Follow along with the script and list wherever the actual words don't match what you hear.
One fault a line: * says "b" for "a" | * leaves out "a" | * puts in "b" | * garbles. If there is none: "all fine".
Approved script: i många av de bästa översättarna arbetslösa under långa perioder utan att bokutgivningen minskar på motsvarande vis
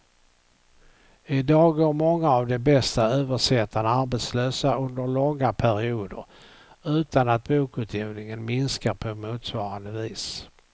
* puts in "dag går"